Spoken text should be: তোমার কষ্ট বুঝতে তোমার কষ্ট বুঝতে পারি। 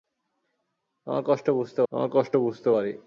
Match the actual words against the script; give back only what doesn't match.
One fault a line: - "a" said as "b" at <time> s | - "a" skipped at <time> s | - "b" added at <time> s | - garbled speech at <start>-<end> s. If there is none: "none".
none